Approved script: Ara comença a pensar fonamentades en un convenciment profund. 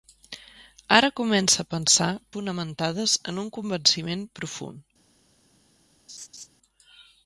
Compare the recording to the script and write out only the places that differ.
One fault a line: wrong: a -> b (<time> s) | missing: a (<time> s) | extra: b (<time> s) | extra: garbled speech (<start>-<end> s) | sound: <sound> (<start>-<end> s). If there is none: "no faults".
sound: laugh (6.1-6.5 s)